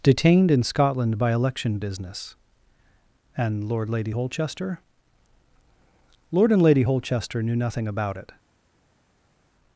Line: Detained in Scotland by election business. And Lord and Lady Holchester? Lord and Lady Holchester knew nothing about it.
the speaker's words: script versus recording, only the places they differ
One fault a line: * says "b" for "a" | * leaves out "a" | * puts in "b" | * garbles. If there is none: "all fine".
* leaves out "and"